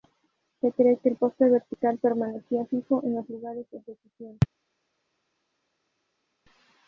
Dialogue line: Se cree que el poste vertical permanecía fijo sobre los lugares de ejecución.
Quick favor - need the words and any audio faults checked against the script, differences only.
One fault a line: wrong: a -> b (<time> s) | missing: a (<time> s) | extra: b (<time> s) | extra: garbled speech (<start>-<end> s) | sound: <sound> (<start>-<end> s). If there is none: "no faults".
wrong: sobre -> en (3.0 s)